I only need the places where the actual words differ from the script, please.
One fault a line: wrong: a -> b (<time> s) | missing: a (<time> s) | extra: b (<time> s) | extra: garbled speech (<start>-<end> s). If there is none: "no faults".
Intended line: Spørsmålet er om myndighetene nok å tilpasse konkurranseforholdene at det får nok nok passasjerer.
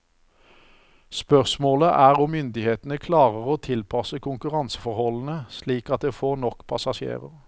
wrong: nok -> klarer (3.0 s)
extra: slik (5.5 s)
missing: nok (6.7 s)